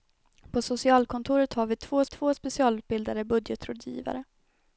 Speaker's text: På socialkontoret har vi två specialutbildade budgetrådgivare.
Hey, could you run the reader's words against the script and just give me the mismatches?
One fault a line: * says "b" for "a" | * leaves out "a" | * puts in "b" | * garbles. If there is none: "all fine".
* puts in "två"